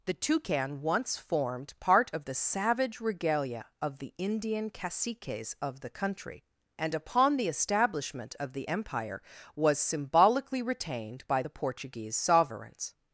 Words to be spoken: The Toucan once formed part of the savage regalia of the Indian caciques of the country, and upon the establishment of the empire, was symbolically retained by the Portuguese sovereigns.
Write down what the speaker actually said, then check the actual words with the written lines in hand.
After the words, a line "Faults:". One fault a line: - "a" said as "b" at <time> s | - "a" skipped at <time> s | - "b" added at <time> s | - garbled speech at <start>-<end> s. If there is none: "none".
The Toucan once formed part of the savage regalia of the Indian caciques of the country, and upon the establishment of the empire, was symbolically retained by the Portuguese sovereigns.
Faults:
none